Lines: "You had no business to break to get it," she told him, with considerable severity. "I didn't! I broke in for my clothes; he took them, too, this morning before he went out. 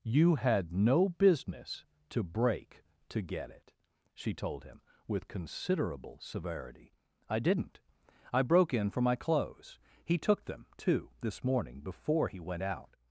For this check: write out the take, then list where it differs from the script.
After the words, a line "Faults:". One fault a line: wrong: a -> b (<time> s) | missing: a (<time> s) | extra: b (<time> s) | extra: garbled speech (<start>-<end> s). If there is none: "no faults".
"You had no business to break to get it," she told him, with considerable severity. "I didn't! I broke in for my clothes; he took them, too, this morning before he went out.
Faults:
no faults